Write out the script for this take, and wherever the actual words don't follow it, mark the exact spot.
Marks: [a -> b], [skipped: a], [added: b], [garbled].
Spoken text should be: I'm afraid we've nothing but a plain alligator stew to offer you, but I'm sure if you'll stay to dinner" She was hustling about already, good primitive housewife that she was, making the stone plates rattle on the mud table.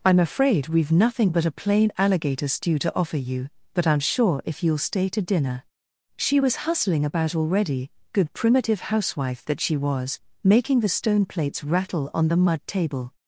I'm afraid we've nothing but a plain alligator stew to offer you, but I'm sure if you'll stay to dinner" She was hustling about already, good primitive housewife that she was, making the stone plates rattle on the mud table.